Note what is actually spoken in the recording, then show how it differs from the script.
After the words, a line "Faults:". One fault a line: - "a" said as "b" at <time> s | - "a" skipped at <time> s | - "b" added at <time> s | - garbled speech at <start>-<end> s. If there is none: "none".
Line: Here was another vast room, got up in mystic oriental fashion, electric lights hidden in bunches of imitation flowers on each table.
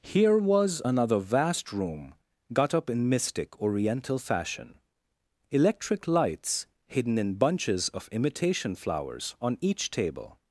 Here was another vast room, got up in mystic oriental fashion, electric lights hidden in bunches of imitation flowers on each table.
Faults:
none